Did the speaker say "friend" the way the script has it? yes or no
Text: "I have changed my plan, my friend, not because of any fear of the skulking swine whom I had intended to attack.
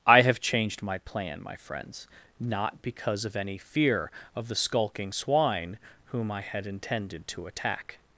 no